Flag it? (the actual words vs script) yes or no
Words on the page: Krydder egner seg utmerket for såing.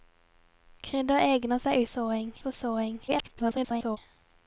yes